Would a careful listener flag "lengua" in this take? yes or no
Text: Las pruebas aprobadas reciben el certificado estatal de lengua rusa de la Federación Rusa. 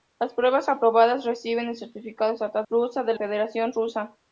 yes